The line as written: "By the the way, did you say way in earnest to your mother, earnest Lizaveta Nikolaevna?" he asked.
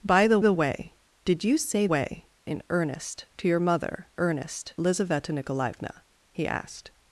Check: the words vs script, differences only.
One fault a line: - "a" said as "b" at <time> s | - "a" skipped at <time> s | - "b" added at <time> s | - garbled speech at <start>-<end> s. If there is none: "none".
none